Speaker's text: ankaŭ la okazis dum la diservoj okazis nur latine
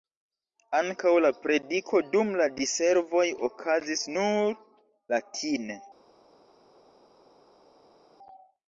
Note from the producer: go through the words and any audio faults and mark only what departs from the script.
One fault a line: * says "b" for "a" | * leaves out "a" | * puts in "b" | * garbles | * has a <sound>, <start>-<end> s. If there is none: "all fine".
* says "prediko" for "okazis"